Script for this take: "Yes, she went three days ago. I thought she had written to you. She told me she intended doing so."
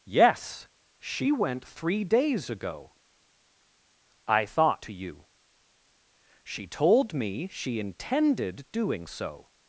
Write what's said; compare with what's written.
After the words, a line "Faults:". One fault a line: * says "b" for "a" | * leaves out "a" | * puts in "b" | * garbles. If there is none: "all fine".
"Yes, she went three days ago. I thought to you. She told me she intended doing so."
Faults:
* leaves out "she had written"